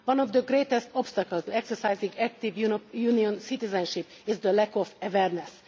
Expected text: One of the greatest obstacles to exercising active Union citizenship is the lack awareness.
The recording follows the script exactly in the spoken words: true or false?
false